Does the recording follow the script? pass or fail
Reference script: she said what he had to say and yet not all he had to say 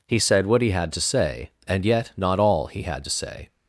fail